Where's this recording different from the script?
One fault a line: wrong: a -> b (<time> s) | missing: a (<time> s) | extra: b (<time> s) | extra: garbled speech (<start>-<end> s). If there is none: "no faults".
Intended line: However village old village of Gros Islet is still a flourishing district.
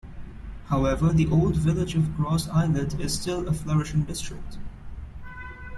wrong: village -> the (1.1 s)